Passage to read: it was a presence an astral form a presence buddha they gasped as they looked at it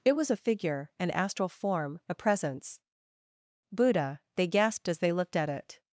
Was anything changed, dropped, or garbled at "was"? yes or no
no